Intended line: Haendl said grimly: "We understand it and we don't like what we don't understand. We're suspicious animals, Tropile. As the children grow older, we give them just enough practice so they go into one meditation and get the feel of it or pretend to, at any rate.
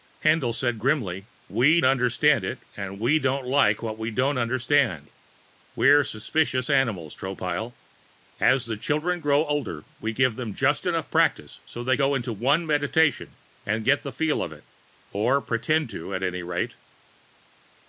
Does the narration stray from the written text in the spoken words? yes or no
no